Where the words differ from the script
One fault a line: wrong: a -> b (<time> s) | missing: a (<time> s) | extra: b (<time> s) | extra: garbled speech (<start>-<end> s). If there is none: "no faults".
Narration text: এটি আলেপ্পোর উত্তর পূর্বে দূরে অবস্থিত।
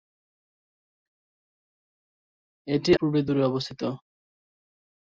missing: আলেপ্পোর উত্তর (2.9 s)